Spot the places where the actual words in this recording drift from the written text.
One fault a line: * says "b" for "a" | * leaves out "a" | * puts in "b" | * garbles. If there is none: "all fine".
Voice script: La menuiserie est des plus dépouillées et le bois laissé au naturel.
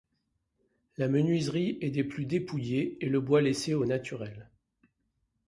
all fine